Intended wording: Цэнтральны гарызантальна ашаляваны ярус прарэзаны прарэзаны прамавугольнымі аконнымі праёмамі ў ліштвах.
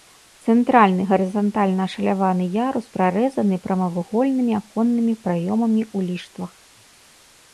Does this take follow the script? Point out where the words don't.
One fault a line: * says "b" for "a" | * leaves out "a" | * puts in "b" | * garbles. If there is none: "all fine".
* leaves out "прарэзаны"